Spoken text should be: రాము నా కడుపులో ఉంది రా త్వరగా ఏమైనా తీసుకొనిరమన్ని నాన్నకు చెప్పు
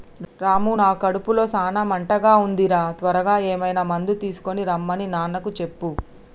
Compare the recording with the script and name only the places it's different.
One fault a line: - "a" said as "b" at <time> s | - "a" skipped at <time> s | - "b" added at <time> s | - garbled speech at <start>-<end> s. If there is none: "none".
- "సాన మంటగా" added at 1.5 s
- "మందు" added at 3.9 s